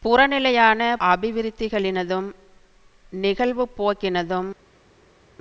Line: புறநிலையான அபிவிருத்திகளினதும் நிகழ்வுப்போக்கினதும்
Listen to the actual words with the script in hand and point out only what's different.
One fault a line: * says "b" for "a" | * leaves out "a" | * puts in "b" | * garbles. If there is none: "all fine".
all fine